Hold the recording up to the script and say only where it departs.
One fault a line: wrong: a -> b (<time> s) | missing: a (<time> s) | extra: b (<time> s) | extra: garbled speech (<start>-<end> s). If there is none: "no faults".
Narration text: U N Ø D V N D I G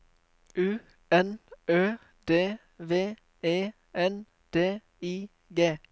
extra: E (3.4 s)